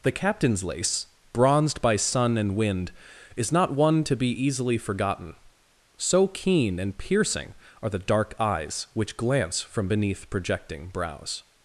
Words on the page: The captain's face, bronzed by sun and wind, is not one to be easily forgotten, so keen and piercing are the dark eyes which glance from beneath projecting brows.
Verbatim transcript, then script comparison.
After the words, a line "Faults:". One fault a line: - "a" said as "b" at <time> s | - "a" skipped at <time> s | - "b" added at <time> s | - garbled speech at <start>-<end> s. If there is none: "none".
The captain's lace, bronzed by sun and wind, is not one to be easily forgotten, so keen and piercing are the dark eyes which glance from beneath projecting brows.
Faults:
- "face" said as "lace" at 0.6 s